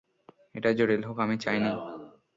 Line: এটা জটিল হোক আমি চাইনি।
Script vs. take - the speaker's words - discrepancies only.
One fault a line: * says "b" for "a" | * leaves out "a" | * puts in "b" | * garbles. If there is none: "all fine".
all fine